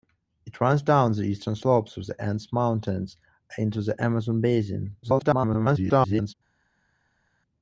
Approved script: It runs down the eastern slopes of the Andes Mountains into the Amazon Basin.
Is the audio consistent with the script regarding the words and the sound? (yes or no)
no